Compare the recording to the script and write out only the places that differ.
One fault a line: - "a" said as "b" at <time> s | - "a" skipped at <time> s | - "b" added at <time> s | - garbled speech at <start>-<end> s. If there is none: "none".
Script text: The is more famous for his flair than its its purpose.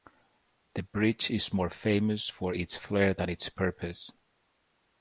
- "bridge" added at 0.8 s
- "his" said as "its" at 2.5 s
- "its" skipped at 3.5 s